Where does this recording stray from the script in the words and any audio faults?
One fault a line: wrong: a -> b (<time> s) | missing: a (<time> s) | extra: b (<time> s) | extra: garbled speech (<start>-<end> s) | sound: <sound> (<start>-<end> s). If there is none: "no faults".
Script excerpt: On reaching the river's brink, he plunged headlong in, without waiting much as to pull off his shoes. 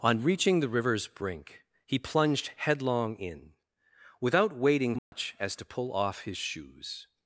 sound: dropout (5.0-5.1 s)